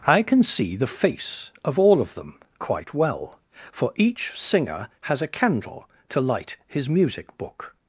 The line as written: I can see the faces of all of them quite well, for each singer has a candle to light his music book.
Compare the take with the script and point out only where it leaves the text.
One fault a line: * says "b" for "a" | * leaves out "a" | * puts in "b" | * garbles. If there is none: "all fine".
* says "face" for "faces"